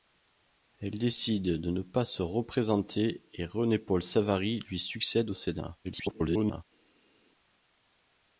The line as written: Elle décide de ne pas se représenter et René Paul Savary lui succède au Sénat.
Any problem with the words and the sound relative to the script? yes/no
yes